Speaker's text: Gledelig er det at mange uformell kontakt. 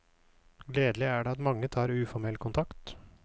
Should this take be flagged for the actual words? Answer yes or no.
yes